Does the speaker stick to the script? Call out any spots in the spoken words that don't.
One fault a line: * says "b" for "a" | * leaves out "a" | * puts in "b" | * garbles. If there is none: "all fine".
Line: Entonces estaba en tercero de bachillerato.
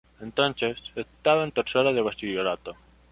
all fine